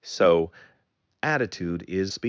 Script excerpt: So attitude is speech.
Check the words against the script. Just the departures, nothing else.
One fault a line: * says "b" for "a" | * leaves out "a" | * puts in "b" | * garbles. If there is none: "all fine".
all fine